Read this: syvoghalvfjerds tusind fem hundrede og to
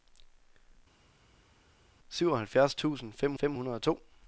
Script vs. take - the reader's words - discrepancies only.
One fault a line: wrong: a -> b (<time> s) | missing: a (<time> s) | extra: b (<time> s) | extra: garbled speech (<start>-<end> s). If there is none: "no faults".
extra: fem (3.3 s)